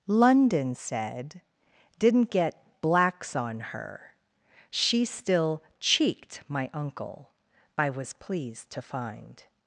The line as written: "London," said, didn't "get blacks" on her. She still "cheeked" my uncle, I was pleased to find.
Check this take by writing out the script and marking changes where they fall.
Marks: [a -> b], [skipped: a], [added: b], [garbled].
"London," said, didn't "get blacks" on her. She still "cheeked" my uncle, I was pleased to find.